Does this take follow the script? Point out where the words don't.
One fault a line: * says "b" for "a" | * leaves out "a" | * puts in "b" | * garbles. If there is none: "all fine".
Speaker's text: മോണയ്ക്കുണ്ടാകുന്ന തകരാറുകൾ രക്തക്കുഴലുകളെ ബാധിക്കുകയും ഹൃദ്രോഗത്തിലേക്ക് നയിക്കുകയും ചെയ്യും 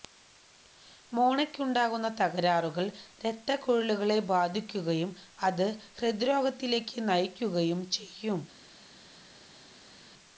* puts in "അത്"